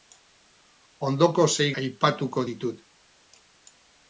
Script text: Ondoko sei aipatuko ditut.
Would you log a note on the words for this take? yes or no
no